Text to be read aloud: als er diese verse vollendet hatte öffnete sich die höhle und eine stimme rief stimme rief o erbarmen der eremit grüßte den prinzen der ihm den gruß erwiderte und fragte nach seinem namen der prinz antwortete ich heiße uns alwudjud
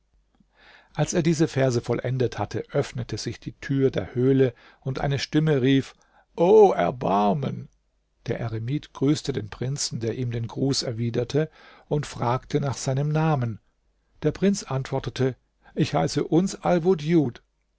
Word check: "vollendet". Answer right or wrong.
right